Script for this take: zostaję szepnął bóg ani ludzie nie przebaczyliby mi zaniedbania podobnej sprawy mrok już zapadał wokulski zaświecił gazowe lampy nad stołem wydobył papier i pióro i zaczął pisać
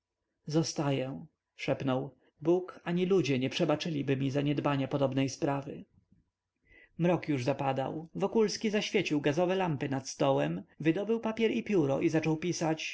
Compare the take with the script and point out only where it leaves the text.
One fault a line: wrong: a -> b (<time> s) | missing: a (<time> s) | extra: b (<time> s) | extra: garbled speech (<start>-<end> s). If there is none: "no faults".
no faults